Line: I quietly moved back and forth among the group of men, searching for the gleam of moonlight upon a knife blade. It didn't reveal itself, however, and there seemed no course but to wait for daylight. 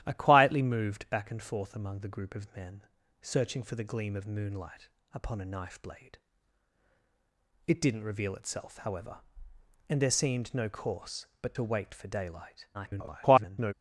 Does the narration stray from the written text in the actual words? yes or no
yes